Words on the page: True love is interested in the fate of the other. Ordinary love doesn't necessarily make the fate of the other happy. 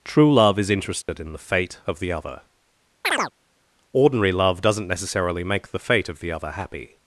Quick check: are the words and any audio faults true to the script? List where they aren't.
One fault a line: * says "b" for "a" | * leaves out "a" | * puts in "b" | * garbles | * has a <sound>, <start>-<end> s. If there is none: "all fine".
* has a dropout, 1.0-1.1 s
* has a chirp, 3.0-3.3 s